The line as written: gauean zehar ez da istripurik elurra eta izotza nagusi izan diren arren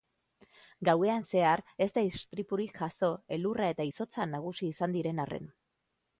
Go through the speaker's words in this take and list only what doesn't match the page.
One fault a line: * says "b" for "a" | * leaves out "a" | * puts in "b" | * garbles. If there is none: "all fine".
* puts in "jazo"